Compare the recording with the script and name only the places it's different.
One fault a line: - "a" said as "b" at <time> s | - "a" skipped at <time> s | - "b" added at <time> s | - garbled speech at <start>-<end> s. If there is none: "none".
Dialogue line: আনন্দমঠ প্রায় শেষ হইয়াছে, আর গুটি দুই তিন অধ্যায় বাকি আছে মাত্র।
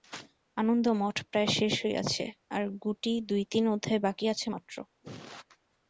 none